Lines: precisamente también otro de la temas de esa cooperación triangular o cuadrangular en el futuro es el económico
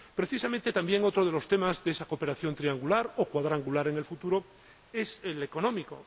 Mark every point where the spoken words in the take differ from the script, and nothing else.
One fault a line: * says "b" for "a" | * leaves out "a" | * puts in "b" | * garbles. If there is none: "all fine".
* says "los" for "la"